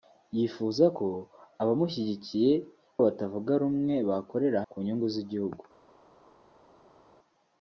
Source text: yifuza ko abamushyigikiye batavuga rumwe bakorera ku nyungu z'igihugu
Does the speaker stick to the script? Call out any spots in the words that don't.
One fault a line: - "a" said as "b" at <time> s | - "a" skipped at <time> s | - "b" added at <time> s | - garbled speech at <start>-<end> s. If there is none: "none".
none